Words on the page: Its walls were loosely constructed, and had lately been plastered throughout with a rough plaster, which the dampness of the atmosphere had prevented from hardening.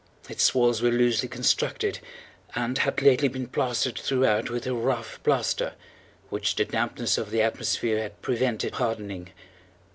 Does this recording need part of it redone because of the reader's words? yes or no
yes